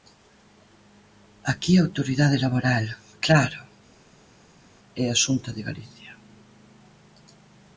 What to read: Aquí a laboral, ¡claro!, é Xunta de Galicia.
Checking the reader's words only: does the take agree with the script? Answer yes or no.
no